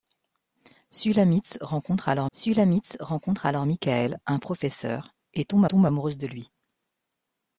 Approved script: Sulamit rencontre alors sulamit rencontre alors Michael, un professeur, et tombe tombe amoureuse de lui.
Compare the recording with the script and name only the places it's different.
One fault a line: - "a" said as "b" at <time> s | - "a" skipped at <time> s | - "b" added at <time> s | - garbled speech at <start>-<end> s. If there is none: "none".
none